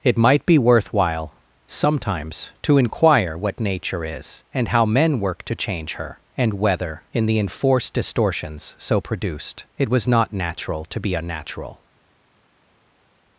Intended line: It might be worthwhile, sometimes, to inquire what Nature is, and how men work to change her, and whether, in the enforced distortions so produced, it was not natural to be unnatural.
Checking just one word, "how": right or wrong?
right